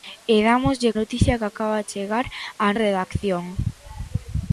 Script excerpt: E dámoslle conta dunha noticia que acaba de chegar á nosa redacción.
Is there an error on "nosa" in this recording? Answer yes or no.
yes